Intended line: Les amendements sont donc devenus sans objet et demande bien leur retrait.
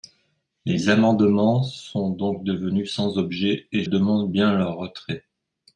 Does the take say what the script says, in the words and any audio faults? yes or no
yes